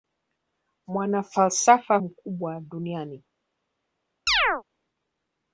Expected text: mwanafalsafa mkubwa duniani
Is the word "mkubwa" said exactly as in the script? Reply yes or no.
yes